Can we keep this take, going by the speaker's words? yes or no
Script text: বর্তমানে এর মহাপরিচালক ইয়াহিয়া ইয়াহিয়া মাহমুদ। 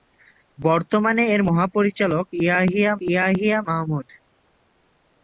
yes